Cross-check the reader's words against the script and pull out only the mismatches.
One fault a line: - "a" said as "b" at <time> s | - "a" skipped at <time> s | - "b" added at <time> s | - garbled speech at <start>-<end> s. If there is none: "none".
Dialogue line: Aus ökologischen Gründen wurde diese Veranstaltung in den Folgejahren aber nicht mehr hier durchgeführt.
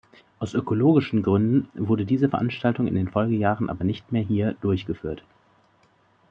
none